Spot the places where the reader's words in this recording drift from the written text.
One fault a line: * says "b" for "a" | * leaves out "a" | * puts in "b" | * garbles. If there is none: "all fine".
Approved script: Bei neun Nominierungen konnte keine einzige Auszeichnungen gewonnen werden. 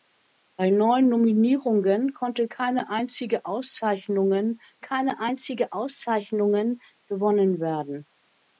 * puts in "keine einzige Auszeichnungen"